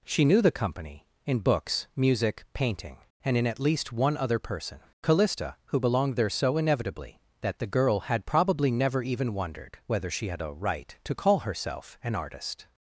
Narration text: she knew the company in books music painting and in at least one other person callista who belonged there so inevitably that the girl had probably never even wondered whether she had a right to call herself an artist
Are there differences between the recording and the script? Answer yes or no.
no